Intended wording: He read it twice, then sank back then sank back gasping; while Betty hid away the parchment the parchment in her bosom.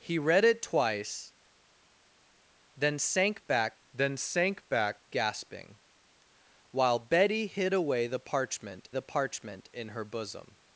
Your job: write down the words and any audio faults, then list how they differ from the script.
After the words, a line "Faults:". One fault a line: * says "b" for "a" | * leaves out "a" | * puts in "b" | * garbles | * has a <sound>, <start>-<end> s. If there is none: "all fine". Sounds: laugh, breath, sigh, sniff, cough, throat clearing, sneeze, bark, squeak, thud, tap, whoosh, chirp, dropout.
He read it twice, then sank back then sank back gasping; while Betty hid away the parchment the parchment in her bosom.
Faults:
all fine